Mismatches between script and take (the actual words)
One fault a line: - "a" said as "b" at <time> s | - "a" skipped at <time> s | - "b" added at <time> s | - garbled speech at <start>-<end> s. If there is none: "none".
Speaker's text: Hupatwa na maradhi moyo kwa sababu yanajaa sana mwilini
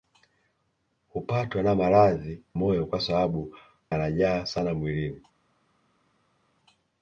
none